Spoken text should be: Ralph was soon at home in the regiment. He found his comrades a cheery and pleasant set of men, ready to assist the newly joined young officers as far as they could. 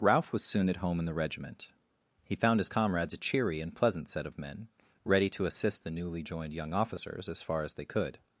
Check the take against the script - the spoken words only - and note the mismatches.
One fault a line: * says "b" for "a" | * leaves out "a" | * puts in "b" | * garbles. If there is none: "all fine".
all fine